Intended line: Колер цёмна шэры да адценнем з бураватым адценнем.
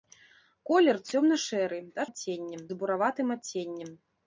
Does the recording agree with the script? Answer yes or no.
yes